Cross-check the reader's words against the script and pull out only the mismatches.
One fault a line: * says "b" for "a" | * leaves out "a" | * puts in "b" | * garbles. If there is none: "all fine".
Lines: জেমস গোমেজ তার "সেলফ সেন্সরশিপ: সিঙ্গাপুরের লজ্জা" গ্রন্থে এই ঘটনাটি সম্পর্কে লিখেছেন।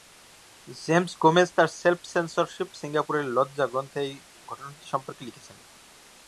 all fine